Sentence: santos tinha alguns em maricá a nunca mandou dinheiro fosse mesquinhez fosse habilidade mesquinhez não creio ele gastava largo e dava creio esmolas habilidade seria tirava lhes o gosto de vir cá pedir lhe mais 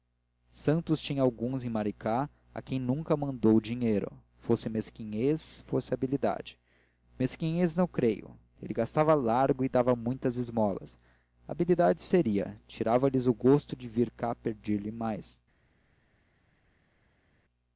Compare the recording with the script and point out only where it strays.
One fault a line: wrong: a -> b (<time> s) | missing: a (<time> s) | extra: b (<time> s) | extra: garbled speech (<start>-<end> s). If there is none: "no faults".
extra: quem (2.6 s)
wrong: creio -> muitas (10.0 s)